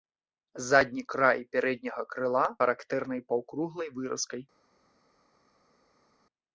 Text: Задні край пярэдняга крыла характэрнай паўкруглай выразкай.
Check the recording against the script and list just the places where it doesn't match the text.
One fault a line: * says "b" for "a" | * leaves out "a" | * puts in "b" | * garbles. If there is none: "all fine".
all fine